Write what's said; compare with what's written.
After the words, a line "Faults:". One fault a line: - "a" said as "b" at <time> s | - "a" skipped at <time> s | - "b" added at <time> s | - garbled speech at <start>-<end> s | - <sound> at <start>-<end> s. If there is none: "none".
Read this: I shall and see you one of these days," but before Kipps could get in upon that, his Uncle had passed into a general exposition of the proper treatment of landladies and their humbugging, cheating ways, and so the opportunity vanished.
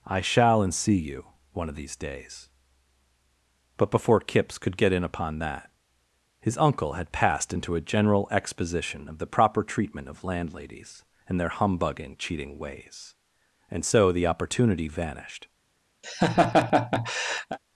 I shall and see you one of these days," but before Kipps could get in upon that, his Uncle had passed into a general exposition of the proper treatment of landladies and their humbugging, cheating ways, and so the opportunity vanished.
Faults:
- laugh at 16.0-17.6 s